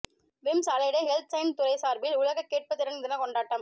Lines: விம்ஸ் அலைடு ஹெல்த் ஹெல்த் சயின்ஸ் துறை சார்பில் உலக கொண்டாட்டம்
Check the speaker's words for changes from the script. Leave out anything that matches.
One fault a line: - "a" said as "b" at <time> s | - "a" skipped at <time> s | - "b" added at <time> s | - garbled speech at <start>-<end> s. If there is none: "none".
- "ஹெல்த்" skipped at 1.3 s
- "கேட்பு திறன் தின" added at 2.5 s